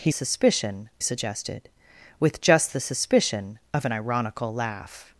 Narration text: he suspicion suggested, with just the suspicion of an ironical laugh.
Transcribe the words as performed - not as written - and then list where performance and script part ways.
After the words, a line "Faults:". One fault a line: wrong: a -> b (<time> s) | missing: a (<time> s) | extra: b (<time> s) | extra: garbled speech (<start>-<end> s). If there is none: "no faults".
he suspicion suggested, with just the suspicion of an ironical laugh.
Faults:
no faults